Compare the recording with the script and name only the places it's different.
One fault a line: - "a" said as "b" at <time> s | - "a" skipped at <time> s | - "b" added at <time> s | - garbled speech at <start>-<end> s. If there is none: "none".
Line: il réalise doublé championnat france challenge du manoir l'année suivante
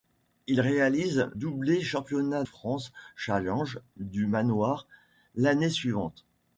none